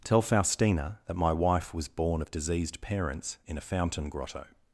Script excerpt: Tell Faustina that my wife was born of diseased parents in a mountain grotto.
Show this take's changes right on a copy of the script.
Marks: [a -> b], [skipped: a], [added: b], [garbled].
Tell Faustina that my wife was born of diseased parents in a [mountain -> fountain] grotto.